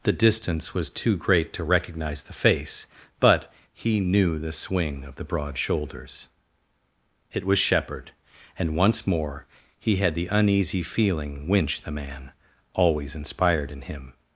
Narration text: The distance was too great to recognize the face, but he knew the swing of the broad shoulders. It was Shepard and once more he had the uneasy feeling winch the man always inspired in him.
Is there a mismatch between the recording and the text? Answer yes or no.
no